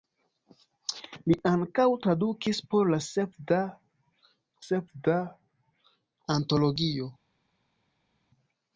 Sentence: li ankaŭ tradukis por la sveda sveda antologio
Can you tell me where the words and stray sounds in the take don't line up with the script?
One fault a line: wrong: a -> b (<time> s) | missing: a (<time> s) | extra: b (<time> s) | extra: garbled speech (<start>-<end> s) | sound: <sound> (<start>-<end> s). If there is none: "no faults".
no faults